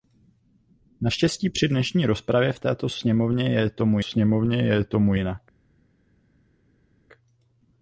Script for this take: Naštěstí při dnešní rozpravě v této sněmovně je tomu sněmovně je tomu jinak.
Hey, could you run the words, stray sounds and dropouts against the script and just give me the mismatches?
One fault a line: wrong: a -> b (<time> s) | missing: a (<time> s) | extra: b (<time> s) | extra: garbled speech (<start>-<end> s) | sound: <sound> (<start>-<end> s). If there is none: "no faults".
no faults